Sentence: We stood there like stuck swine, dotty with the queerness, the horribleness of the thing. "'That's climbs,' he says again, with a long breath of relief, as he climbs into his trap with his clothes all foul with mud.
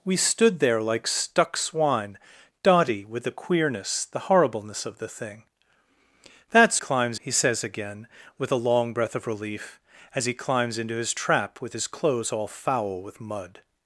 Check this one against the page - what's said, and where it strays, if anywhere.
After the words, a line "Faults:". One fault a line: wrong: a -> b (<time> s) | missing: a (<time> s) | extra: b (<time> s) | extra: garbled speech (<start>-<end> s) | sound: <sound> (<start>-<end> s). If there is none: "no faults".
We stood there like stuck swine, dotty with the queerness, the horribleness of the thing. "'That's climbs,' he says again, with a long breath of relief, as he climbs into his trap with his clothes all foul with mud.
Faults:
no faults